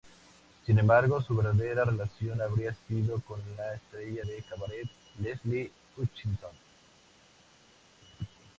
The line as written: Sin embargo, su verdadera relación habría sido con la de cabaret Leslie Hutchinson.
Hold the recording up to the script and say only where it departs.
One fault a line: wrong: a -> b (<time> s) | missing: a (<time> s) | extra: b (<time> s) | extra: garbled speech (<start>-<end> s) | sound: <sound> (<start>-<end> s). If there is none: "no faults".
extra: estrella (3.8 s)